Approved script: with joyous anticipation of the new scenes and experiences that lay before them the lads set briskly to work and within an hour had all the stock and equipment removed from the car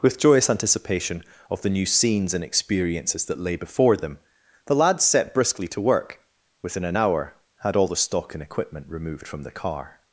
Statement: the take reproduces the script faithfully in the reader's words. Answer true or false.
false